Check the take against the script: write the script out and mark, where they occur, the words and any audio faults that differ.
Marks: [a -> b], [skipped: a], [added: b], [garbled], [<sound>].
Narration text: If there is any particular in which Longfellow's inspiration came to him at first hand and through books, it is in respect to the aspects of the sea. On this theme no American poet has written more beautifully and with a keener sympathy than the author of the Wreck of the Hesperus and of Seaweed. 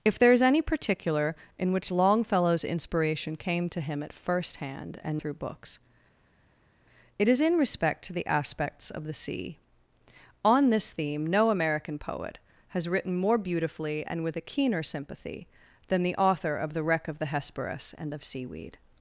If there is any particular in which Longfellow's inspiration came to him at first hand and through books, it is in respect to the aspects of the sea. On this theme no American poet has written more beautifully and with a keener sympathy than the author of the Wreck of the Hesperus and of Seaweed.